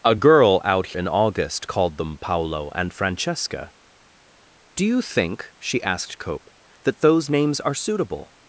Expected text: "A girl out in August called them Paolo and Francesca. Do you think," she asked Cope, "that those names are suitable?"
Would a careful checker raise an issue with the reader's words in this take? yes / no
no